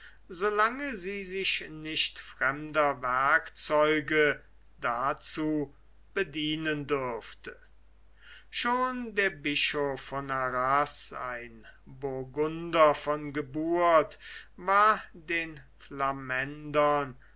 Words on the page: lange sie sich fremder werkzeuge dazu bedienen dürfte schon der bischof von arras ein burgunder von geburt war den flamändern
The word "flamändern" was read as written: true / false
true